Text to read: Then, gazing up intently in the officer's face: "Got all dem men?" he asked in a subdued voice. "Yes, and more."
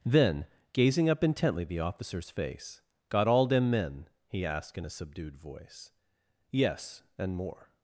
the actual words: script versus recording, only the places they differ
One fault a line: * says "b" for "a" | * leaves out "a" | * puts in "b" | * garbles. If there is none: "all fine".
* leaves out "in"